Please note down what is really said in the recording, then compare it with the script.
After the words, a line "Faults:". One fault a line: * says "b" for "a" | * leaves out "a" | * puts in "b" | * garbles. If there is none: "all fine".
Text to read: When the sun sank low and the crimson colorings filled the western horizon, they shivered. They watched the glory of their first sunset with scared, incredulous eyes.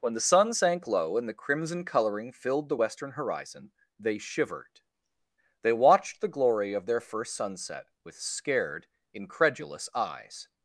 When the sun sank low and the crimson coloring filled the western horizon, they shivered. They watched the glory of their first sunset with scared, incredulous eyes.
Faults:
* says "coloring" for "colorings"